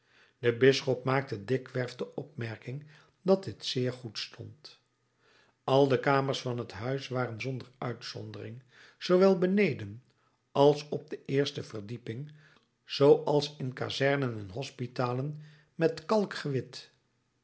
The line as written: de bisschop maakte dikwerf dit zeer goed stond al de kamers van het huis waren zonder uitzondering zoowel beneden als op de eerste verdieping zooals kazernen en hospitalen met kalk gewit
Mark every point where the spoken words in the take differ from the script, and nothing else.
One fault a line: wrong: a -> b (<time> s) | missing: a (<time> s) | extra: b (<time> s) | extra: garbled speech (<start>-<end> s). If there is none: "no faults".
extra: de opmerking dat (1.9 s)
extra: in (13.6 s)